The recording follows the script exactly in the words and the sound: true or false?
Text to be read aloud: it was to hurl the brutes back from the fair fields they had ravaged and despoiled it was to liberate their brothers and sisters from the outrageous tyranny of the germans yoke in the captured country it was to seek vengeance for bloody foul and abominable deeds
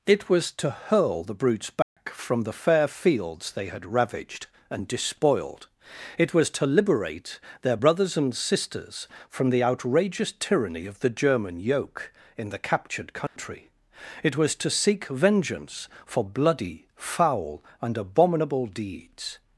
false